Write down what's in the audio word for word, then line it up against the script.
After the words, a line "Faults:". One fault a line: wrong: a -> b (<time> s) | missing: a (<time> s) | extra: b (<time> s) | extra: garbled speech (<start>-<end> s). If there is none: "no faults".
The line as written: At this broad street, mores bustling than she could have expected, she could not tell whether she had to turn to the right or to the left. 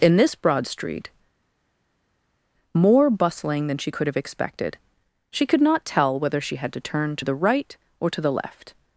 In this broad street, more bustling than she could have expected, she could not tell whether she had to turn to the right or to the left.
Faults:
wrong: At -> In (0.0 s)
wrong: mores -> more (2.7 s)